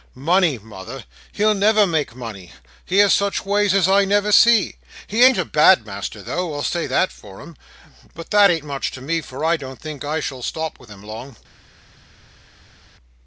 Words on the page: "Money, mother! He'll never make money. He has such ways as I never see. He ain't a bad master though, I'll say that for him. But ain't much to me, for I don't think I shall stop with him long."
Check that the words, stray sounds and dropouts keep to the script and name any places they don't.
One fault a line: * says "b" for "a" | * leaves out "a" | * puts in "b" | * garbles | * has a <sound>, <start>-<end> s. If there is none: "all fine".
* puts in "that"